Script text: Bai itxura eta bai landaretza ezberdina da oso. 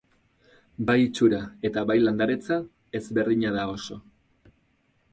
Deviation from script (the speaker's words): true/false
false